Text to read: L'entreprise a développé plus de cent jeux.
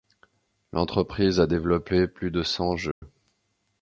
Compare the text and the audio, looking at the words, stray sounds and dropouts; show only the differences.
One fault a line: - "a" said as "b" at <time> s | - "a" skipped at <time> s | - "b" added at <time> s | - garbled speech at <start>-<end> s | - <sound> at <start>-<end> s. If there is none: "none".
- dropout at 2.9-3.0 s